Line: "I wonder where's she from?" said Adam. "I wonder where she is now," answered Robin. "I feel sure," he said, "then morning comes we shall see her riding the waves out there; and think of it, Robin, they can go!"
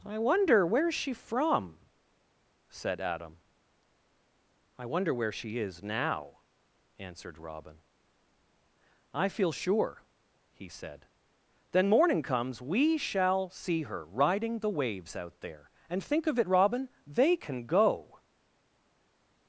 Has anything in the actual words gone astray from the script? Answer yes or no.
no